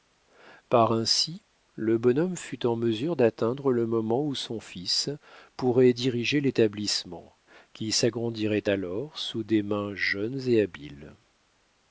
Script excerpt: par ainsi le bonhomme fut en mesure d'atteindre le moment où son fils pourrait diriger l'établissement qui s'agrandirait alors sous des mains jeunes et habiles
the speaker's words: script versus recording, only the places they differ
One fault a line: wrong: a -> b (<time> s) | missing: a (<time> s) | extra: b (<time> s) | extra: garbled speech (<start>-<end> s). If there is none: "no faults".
no faults